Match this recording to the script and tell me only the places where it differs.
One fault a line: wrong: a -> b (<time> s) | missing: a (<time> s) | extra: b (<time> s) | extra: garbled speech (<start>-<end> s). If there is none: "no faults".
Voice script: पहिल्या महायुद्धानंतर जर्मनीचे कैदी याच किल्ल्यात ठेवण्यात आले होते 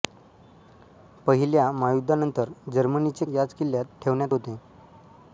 missing: कैदी (3.2 s)
missing: आले (4.3 s)